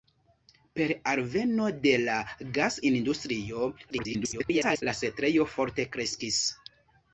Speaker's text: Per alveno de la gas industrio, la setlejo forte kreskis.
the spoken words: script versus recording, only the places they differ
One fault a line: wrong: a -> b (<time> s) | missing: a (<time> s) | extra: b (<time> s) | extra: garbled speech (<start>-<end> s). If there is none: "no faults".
extra: garbled speech (3.9-4.8 s)